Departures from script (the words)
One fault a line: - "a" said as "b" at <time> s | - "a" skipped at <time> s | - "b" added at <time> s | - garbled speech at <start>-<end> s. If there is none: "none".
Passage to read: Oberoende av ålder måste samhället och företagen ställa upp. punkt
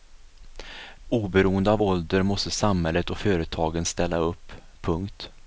none